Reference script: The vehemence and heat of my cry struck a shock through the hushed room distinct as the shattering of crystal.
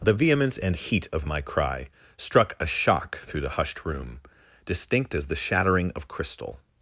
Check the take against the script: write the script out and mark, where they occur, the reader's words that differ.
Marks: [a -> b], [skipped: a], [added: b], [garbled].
The vehemence and heat of my cry struck a shock through the hushed room distinct as the shattering of crystal.